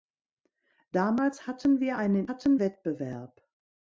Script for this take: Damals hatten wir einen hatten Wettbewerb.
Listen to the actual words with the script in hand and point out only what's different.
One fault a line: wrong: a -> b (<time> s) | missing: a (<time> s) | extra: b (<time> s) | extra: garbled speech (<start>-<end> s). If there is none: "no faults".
no faults